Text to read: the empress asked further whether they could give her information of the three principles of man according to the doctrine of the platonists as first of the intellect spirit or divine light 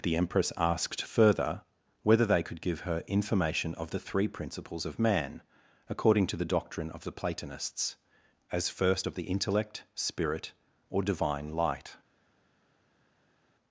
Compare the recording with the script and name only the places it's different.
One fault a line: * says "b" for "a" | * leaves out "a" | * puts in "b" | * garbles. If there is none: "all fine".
all fine